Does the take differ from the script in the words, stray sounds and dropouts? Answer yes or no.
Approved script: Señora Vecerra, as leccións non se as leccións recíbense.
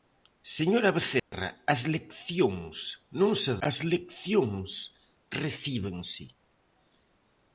yes